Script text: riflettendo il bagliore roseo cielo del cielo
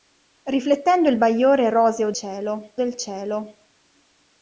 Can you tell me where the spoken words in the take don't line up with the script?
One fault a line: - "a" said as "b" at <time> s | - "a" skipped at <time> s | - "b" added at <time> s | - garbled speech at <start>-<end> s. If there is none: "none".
none